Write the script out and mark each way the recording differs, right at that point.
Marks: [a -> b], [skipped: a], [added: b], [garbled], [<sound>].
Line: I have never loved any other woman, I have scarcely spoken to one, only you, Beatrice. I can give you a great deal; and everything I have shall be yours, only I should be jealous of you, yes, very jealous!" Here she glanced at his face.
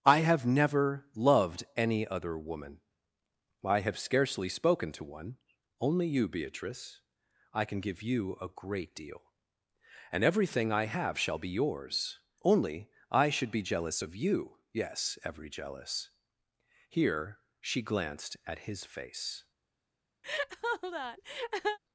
I have never loved any other woman, I have scarcely spoken to one, only you, Beatrice. I can give you a great deal; and everything I have shall be yours, only I should be jealous of you, yes, [very -> every] jealous!" Here she glanced at his face. [laugh]